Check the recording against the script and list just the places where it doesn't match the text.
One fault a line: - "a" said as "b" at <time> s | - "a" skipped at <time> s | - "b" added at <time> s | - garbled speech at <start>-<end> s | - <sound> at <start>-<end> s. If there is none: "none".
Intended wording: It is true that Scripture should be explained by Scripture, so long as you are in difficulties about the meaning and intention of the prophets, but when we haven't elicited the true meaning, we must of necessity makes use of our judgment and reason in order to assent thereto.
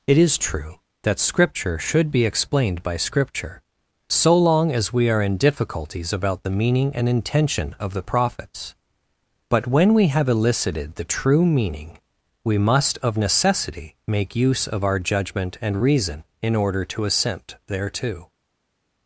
- "you" said as "we" at 4.9 s
- "haven't" said as "have" at 10.1 s
- "makes" said as "make" at 14.1 s